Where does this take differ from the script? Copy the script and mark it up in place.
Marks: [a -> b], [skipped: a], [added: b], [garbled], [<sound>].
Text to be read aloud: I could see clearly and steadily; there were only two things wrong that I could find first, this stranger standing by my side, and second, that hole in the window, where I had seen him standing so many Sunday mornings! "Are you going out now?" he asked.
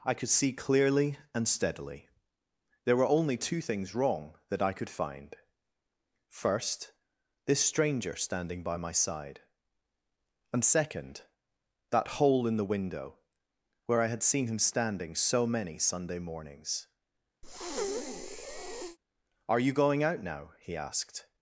I could see clearly and steadily; there were only two things wrong that I could find first, this stranger standing by my side, and second, that hole in the window, where I had seen him standing so many Sunday mornings! [breath] "Are you going out now?" he asked.